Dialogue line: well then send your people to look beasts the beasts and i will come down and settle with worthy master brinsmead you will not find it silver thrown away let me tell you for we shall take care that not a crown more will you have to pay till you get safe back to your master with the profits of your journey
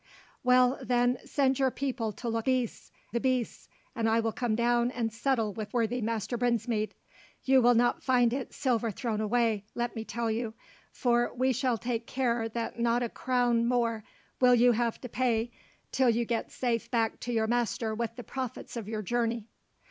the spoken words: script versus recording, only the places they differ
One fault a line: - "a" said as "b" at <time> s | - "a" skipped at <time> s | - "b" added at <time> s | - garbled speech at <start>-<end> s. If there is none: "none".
none